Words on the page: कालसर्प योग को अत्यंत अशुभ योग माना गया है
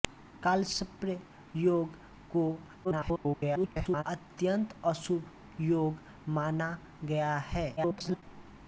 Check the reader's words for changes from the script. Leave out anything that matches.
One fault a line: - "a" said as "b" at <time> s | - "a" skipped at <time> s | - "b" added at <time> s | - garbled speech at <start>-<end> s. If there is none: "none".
- garbled speech at 2.8-4.0 s
- garbled speech at 7.8-8.2 s